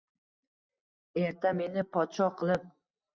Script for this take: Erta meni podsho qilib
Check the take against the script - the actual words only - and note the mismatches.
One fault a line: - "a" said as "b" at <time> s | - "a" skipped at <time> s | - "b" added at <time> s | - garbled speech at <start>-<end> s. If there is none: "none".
none